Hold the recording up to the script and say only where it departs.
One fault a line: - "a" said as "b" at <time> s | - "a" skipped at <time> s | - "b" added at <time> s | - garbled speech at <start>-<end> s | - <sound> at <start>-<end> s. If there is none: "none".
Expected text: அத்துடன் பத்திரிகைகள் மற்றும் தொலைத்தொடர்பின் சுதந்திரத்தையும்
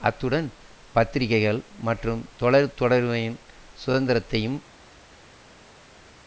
none